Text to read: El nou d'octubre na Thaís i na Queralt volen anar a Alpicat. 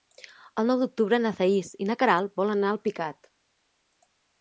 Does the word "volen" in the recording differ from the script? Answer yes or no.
no